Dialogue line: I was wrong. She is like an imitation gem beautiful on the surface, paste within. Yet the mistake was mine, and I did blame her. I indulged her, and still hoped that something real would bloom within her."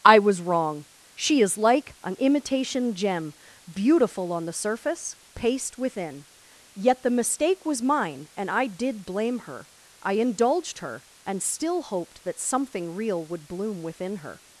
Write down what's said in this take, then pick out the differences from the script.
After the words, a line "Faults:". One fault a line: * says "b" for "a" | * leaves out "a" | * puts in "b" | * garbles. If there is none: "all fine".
I was wrong. She is like an imitation gem beautiful on the surface, paste within. Yet the mistake was mine, and I did blame her. I indulged her, and still hoped that something real would bloom within her."
Faults:
all fine